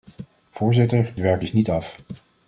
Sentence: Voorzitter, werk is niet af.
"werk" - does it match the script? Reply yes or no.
yes